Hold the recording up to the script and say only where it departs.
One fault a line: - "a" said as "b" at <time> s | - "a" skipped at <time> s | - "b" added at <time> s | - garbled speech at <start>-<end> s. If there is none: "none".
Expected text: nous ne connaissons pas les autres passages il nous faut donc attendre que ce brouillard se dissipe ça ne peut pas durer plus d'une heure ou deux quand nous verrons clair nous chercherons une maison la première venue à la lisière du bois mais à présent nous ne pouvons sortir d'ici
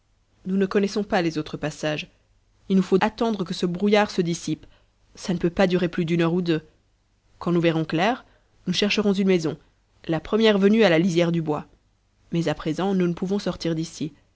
- "donc" skipped at 3.0 s